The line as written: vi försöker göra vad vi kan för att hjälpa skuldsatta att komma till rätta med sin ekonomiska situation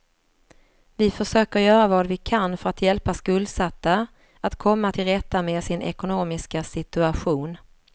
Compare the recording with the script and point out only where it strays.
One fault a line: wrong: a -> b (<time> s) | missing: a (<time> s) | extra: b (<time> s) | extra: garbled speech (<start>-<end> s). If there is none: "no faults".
no faults